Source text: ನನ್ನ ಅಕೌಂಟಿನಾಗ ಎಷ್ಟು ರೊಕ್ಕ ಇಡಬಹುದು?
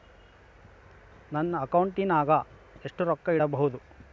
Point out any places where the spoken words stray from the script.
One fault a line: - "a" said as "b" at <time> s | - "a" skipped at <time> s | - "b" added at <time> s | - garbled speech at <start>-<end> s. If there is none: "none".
none